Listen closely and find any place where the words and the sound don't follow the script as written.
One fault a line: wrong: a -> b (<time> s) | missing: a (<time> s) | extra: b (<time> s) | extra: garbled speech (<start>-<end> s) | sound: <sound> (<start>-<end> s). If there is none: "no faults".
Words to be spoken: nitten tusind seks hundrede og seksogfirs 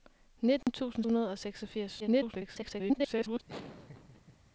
sound: dropout (0.6-0.7 s)
missing: seks (1.1 s)
extra: garbled speech (2.0-3.4 s)
sound: laugh (3.5-4.5 s)